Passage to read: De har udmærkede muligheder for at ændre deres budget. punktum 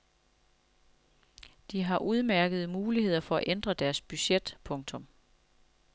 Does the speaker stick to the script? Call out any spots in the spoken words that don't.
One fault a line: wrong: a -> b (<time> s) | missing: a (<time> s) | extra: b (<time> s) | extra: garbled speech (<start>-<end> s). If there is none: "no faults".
no faults